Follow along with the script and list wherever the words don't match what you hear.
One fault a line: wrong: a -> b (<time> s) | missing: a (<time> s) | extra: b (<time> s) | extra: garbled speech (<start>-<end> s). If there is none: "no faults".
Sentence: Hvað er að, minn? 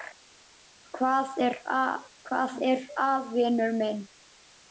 extra: vinur (3.3 s)